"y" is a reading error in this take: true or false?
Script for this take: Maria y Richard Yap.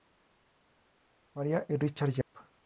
false